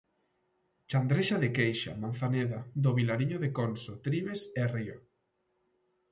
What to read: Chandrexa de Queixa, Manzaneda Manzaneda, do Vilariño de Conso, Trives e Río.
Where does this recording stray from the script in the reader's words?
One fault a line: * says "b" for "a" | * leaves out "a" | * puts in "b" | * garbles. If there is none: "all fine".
* leaves out "Manzaneda"